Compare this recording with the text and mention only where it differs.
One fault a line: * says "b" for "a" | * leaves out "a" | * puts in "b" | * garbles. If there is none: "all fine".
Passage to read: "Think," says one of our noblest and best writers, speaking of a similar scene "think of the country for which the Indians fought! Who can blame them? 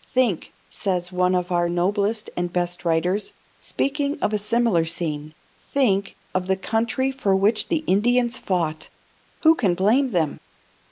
all fine